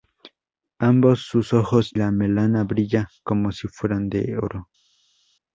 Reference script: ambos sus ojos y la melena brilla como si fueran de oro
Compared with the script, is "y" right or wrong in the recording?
wrong